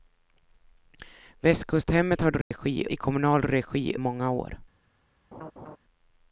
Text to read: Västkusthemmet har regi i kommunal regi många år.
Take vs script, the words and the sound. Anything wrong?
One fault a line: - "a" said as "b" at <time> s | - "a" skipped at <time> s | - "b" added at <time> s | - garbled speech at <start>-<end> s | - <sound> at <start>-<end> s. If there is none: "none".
- dropout at 2.4-2.5 s
- laugh at 5.3-5.8 s